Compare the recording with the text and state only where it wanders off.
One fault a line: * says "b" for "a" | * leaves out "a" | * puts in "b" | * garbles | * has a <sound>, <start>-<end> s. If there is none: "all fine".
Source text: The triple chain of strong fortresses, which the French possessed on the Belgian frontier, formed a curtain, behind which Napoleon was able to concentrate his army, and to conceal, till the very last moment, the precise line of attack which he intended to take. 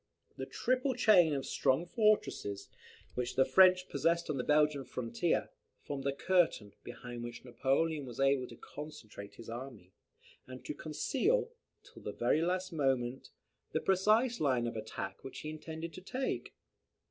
all fine